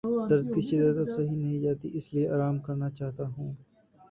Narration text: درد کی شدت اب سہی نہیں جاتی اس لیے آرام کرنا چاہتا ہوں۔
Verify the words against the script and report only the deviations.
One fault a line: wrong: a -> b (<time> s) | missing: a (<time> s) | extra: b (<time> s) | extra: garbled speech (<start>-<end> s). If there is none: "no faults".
no faults